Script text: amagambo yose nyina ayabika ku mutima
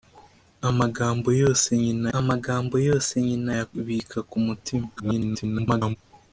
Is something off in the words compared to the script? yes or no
yes